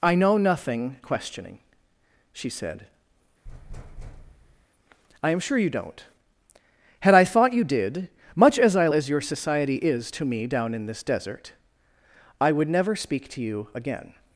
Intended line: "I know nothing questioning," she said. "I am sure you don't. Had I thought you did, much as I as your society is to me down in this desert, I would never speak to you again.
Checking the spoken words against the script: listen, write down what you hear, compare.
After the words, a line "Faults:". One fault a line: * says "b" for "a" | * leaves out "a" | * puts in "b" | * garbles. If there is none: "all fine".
"I know nothing questioning," she said. "I am sure you don't. Had I thought you did, much as I as your society is to me down in this desert, I would never speak to you again.
Faults:
all fine